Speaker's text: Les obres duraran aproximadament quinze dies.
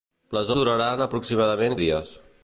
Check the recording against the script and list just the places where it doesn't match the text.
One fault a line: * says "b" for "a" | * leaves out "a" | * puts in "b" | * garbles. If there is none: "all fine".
* leaves out "obres"
* leaves out "quinze"